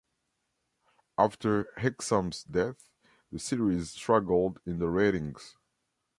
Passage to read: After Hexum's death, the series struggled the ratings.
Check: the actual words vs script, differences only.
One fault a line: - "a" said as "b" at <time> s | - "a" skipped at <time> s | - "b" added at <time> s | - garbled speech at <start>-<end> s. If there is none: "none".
- "in" added at 4.7 s